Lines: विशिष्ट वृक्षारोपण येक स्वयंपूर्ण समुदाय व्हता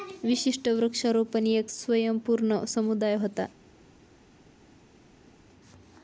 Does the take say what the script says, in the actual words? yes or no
yes